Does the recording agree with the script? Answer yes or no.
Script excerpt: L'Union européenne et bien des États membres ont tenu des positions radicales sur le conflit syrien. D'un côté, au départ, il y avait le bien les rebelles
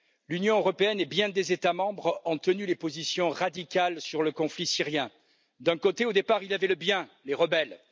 yes